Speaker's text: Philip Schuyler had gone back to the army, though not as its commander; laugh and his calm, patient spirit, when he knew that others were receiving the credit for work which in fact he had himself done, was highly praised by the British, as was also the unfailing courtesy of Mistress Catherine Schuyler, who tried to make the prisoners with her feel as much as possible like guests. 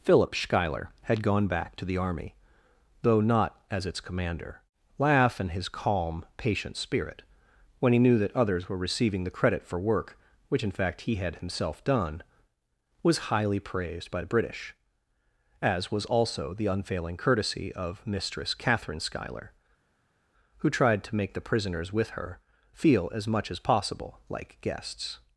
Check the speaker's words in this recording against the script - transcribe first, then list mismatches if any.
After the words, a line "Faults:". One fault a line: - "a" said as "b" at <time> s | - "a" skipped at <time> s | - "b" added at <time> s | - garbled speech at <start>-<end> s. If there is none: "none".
Philip Schuyler had gone back to the army, though not as its commander; laugh and his calm, patient spirit, when he knew that others were receiving the credit for work which in fact he had himself done, was highly praised by the British, as was also the unfailing courtesy of Mistress Catherine Schuyler, who tried to make the prisoners with her feel as much as possible like guests.
Faults:
none